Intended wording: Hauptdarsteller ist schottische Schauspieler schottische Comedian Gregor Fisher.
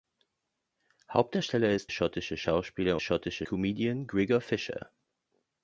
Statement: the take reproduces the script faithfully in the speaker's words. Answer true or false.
true